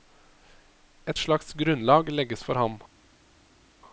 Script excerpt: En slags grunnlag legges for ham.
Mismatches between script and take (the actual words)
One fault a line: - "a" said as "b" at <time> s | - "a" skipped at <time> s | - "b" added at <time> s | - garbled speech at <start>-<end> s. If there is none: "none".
- "En" said as "Et" at 1.1 s